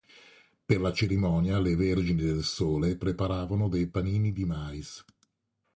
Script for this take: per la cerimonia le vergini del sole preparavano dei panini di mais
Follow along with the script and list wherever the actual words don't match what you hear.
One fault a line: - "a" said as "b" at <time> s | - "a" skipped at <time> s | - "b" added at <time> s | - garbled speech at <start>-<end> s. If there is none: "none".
none